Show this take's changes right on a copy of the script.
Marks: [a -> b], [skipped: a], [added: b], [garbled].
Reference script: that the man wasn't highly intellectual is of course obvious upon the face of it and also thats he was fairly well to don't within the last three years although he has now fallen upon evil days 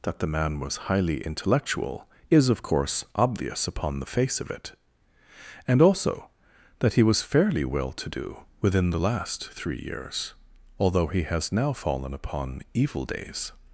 that the man [wasn't -> was] highly intellectual is of course obvious upon the face of it and also [thats -> that] he was fairly well to [don't -> do] within the last three years although he has now fallen upon evil days